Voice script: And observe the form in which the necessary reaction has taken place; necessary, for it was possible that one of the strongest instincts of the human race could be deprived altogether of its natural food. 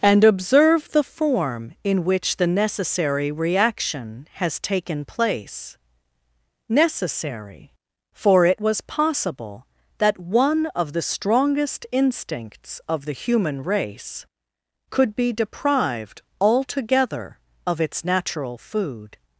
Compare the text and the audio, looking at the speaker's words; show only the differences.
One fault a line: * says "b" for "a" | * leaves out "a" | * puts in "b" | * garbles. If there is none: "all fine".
all fine